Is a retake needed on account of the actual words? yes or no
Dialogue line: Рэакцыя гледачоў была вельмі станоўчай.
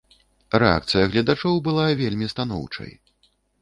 no